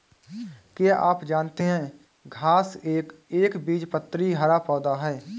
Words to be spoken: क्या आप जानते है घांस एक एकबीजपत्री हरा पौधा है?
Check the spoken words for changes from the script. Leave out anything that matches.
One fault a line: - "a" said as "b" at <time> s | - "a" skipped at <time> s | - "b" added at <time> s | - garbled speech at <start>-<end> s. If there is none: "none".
none